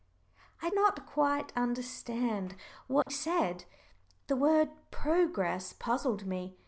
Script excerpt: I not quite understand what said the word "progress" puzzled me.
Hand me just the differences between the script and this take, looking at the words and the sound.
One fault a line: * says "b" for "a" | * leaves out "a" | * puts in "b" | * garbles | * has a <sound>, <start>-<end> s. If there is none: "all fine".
* has a dropout, 3.0-3.1 s